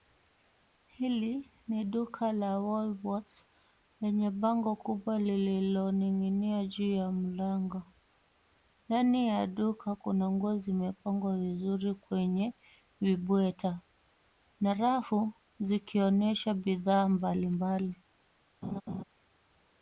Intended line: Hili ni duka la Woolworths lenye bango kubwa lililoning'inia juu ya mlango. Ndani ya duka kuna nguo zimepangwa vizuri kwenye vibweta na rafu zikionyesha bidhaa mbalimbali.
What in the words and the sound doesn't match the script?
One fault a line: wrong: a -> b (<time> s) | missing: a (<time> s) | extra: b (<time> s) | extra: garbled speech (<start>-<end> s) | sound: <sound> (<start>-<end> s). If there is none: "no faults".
sound: laugh (18.6-19.0 s)